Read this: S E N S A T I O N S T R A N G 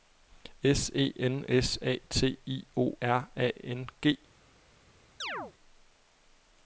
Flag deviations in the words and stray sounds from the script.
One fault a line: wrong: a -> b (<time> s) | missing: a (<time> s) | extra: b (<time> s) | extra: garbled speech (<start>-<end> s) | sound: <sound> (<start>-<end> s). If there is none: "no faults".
missing: N S T (3.0 s)
sound: chirp (5.2-5.5 s)